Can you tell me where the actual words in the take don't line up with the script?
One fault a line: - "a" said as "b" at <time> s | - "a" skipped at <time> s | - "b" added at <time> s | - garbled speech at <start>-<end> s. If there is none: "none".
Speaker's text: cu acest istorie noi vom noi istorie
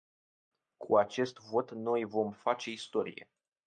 - "istorie" said as "vot" at 1.4 s
- "noi" said as "face" at 2.3 s